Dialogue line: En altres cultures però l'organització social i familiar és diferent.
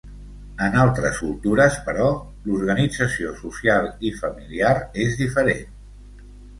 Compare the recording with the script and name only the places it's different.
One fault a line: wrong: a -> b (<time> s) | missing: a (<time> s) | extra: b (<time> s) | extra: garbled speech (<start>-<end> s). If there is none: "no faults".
no faults